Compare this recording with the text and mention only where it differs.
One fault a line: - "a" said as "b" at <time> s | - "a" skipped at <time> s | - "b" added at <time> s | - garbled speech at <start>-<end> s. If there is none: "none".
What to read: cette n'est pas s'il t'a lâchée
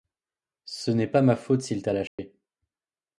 - "cette" said as "ce" at 0.7 s
- "ma faute" added at 1.2 s